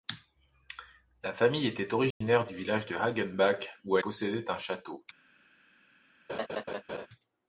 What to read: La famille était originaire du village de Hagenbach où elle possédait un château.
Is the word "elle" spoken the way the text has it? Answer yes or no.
no